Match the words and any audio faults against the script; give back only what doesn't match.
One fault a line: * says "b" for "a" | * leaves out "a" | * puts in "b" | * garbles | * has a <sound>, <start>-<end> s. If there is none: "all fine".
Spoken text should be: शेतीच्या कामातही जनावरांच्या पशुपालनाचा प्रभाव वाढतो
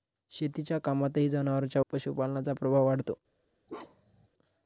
* has a bark, 3.7-4.3 s